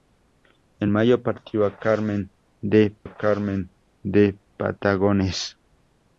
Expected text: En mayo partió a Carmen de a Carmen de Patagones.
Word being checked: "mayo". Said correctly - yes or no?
yes